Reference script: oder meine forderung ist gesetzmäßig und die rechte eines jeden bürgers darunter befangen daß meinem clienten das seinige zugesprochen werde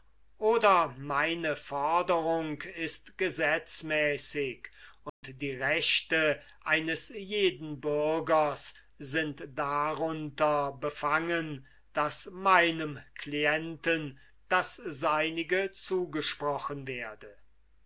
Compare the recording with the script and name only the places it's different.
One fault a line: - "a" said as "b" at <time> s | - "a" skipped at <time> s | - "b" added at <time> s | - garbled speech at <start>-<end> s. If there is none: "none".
- "sind" added at 9.0 s